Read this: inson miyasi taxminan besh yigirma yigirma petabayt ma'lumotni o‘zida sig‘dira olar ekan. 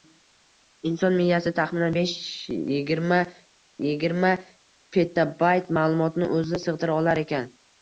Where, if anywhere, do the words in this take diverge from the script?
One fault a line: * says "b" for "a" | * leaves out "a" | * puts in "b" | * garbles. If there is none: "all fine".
all fine